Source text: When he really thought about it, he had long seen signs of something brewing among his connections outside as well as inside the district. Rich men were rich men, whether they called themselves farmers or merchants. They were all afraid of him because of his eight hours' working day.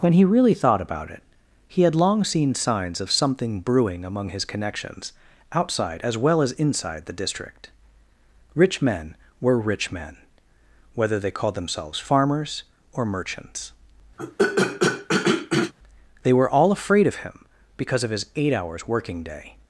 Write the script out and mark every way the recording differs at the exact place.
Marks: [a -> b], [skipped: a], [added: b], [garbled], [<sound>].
When he really thought about it, he had long seen signs of something brewing among his connections outside as well as inside the district. Rich men were rich men, whether they called themselves farmers or merchants. [throat clearing] They were all afraid of him because of his eight hours' working day.